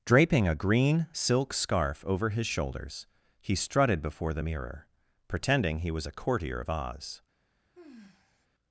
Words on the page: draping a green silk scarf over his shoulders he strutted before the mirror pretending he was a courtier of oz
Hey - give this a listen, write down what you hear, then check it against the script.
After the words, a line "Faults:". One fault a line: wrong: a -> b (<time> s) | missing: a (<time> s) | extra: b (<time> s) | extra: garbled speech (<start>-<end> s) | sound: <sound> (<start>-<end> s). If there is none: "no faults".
draping a green silk scarf over his shoulders he strutted before the mirror pretending he was a courtier of oz
Faults:
sound: sigh (7.7-8.5 s)